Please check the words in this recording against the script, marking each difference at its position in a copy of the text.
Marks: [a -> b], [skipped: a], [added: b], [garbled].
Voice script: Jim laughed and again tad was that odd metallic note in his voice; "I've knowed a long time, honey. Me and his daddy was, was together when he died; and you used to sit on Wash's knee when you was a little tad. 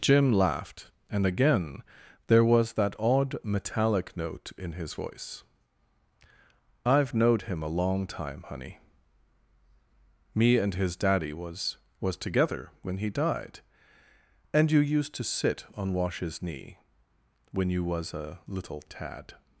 Jim laughed and again [tad -> there] was that odd metallic note in his voice; "I've knowed [added: him] a long time, honey. Me and his daddy was, was together when he died; and you used to sit on Wash's knee when you was a little tad.